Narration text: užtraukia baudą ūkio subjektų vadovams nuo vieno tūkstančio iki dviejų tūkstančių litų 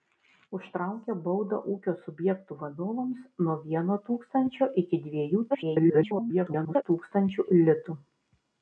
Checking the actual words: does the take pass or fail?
fail